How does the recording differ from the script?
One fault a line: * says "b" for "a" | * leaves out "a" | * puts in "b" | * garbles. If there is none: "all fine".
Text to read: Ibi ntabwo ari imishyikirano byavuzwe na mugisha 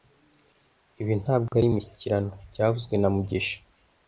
all fine